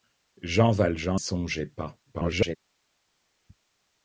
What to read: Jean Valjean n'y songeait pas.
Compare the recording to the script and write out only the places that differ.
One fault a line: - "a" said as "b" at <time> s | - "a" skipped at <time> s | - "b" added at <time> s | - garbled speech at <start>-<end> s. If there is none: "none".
- "n'y" skipped at 1.2 s
- garbled speech at 2.1-2.6 s